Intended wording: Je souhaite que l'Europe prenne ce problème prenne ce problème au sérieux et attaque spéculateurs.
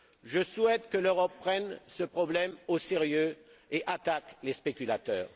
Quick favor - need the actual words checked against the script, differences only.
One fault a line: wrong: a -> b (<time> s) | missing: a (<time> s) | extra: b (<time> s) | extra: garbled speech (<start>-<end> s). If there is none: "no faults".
missing: prenne ce problème (2.5 s)
extra: les (4.4 s)